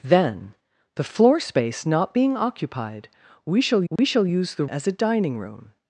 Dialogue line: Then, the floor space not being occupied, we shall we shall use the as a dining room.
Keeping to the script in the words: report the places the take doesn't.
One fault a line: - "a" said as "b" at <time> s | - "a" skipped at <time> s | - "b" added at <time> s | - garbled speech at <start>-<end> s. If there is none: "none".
none